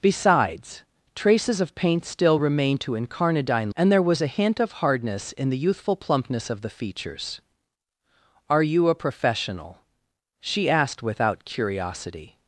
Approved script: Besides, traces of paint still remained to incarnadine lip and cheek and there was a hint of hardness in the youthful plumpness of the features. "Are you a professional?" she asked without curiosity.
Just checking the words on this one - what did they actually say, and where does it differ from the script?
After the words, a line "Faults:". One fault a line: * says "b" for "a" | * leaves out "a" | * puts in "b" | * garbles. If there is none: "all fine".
Besides, traces of paint still remained to incarnadine and there was a hint of hardness in the youthful plumpness of the features. "Are you a professional?" she asked without curiosity.
Faults:
* leaves out "lip and cheek"